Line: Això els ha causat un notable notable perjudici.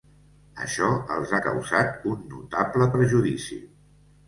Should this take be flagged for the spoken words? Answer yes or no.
yes